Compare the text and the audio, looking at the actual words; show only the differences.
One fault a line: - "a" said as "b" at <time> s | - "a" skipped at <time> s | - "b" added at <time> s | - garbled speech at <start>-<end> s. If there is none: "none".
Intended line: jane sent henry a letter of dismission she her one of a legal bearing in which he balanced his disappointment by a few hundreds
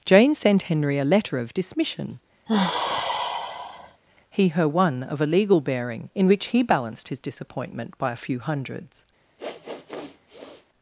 - "she" said as "he" at 4.3 s